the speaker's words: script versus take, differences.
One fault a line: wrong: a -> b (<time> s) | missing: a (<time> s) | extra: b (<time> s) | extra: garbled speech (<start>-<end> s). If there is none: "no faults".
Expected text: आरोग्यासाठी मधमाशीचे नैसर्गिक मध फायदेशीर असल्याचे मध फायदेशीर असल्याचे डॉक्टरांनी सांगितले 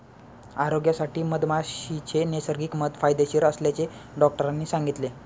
missing: मध फायदेशीर असल्याचे (3.9 s)